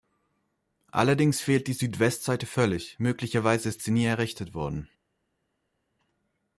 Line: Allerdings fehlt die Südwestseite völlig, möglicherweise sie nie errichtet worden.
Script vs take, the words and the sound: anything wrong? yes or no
yes